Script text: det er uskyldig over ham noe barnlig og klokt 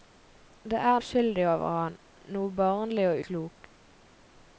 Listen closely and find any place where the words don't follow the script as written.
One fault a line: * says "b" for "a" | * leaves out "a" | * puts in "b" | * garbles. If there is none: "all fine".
all fine